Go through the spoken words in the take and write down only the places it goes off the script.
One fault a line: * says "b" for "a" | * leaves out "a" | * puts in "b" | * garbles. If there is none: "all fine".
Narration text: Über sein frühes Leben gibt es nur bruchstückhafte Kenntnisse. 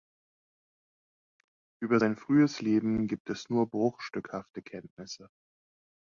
all fine